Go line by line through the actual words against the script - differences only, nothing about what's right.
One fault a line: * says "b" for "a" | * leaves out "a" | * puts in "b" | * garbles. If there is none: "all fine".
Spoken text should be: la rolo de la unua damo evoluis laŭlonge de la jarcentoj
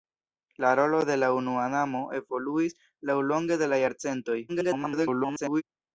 * garbles